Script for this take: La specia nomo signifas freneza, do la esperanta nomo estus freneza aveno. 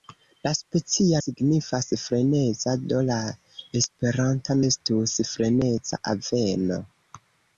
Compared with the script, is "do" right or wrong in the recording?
right